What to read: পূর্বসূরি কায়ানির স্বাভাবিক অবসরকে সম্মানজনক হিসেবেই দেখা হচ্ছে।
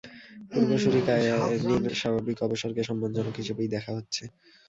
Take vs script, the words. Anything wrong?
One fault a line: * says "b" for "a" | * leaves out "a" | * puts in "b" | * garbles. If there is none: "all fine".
all fine